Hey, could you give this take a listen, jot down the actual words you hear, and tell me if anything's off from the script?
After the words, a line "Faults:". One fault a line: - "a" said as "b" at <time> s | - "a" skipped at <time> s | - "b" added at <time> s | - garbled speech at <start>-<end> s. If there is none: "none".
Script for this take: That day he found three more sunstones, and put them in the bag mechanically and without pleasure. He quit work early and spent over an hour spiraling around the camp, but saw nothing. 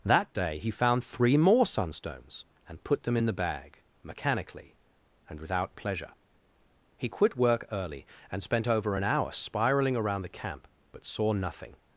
That day he found three more sunstones, and put them in the bag mechanically and without pleasure. He quit work early and spent over an hour spiraling around the camp, but saw nothing.
Faults:
none